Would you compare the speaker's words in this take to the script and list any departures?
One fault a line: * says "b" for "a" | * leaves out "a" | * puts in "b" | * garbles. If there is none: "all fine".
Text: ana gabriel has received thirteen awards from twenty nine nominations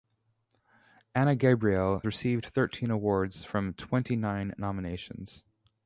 * leaves out "has"